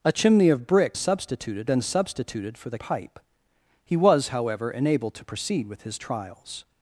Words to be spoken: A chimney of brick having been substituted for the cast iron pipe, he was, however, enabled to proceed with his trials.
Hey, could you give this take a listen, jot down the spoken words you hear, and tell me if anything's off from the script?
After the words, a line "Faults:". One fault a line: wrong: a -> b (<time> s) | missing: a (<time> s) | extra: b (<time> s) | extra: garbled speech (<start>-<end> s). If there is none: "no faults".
A chimney of brick substituted been substituted for the pipe, he was, however, enabled to proceed with his trials.
Faults:
wrong: having -> substituted (0.9 s)
missing: cast iron (2.8 s)